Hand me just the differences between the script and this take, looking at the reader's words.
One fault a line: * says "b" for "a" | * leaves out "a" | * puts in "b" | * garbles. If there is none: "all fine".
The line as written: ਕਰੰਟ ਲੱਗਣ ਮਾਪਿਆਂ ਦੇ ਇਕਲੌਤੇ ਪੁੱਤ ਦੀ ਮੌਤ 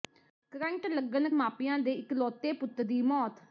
all fine